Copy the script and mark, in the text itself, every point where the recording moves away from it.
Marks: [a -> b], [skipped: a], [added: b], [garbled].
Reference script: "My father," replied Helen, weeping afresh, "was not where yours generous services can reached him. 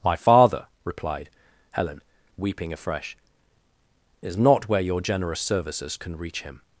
"My father," replied Helen, weeping afresh, ["was -> is] not where [yours -> your] generous services can [reached -> reach] him.